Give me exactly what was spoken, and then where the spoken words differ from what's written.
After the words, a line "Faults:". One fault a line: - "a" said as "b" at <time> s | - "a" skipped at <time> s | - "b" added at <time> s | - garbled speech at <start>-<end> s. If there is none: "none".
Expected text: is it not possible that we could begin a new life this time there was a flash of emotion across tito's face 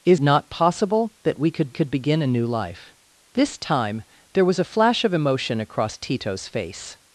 is not possible that we could could begin a new life this time there was a flash of emotion across tito's face
Faults:
- "it" skipped at 0.2 s
- "could" added at 1.7 s